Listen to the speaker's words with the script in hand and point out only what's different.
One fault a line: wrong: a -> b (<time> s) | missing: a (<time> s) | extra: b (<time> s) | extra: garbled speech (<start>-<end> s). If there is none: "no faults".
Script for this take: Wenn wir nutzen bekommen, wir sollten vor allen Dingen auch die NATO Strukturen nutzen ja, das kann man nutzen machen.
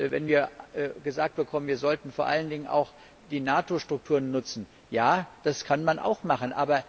wrong: nutzen -> gesagt (1.0 s)
wrong: nutzen -> auch (6.0 s)